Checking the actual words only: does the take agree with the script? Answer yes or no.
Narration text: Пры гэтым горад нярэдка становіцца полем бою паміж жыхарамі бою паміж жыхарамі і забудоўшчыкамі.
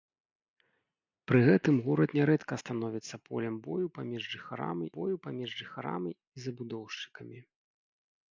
yes